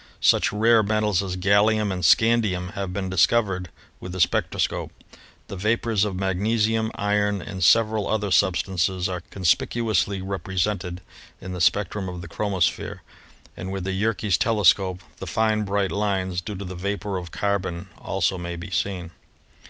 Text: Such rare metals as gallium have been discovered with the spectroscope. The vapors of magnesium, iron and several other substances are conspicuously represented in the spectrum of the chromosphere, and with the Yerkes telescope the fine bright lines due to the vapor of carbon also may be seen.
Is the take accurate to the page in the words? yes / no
no